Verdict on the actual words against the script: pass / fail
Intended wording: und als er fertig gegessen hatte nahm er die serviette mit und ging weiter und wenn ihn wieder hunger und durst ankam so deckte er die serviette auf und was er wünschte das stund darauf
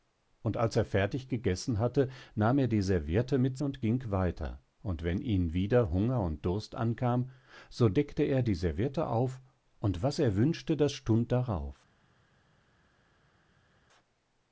pass